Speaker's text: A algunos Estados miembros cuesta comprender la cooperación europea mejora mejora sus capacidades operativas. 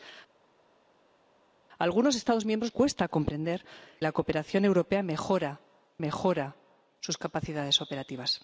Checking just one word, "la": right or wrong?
right